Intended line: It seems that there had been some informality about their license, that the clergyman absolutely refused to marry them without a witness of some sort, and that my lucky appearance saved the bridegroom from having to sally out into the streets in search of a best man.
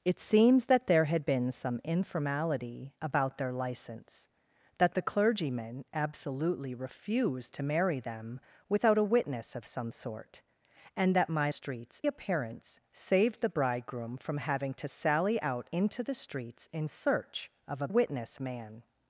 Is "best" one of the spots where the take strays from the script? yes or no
yes